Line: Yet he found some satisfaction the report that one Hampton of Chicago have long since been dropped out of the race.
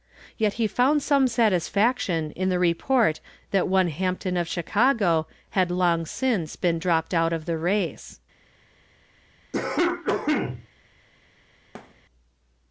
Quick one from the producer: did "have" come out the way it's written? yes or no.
no